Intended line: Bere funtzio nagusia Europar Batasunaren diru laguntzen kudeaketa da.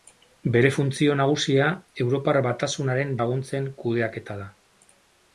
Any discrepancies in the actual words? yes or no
yes